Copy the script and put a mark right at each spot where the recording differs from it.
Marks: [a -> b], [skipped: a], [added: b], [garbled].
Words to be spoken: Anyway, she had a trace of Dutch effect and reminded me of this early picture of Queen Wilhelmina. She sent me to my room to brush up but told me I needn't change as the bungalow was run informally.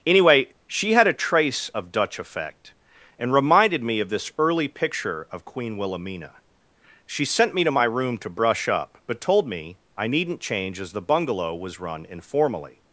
Anyway, she had a trace of Dutch effect and reminded me of this early picture of Queen Wilhelmina. She sent me to my room to brush up but told me I needn't change as the bungalow was run informally.